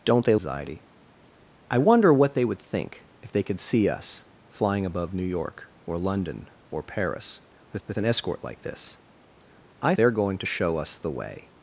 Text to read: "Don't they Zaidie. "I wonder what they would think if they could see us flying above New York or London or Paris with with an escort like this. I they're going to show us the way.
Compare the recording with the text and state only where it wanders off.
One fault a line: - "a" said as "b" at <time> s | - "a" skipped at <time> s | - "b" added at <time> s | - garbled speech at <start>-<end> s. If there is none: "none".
none